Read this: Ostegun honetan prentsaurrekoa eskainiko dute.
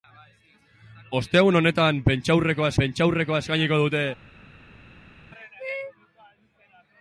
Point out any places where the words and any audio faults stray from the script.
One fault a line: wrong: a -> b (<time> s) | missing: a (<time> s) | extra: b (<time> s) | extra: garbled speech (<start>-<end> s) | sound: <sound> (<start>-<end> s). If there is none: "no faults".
extra: prentsaurrekoa (2.8 s)